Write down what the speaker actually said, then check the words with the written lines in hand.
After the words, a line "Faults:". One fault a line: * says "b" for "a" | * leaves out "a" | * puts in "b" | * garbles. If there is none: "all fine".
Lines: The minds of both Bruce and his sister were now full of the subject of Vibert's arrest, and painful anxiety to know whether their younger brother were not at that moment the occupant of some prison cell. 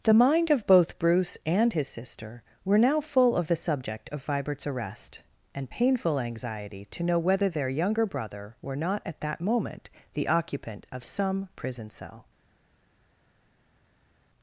The mind of both Bruce and his sister were now full of the subject of Vibert's arrest, and painful anxiety to know whether their younger brother were not at that moment the occupant of some prison cell.
Faults:
* says "mind" for "minds"